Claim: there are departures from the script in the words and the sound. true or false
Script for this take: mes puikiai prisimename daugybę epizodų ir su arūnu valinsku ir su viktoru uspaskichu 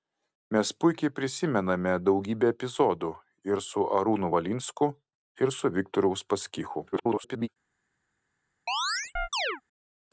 true